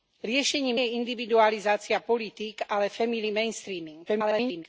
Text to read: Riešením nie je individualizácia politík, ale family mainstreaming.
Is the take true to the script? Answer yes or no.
no